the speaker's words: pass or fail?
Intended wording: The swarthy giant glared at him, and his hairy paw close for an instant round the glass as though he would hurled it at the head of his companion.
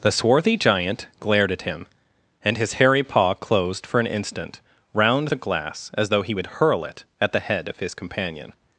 fail